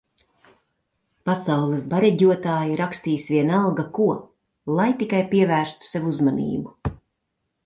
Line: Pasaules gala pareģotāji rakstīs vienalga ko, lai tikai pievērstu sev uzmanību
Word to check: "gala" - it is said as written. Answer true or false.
false